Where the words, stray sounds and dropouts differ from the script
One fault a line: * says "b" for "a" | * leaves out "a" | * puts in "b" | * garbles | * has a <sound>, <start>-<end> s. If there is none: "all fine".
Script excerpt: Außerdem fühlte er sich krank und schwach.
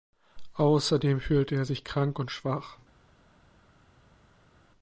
all fine